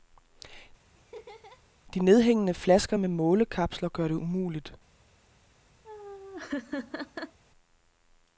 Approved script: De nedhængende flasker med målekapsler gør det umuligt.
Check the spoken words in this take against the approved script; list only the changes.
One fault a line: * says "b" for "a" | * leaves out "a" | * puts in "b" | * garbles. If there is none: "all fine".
all fine